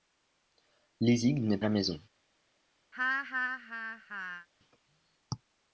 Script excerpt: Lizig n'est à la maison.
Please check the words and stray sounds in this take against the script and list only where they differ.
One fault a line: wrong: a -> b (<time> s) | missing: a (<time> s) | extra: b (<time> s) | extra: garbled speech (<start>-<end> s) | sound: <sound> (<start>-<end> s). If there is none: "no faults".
sound: laugh (2.9-4.5 s)